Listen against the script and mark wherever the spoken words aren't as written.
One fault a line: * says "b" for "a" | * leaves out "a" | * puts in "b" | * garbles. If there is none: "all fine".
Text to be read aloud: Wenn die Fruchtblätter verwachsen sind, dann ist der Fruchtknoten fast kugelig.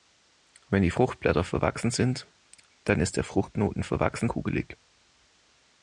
* says "verwachsen" for "fast"